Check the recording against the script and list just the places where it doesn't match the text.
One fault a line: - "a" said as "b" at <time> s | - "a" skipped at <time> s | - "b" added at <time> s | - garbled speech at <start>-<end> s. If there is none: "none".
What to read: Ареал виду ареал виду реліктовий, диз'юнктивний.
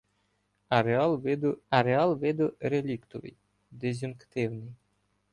none